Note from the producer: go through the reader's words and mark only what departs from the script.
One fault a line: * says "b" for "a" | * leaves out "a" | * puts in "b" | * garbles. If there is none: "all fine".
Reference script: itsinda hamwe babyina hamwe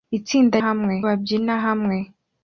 all fine